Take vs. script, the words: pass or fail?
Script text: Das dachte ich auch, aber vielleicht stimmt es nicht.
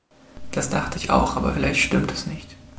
pass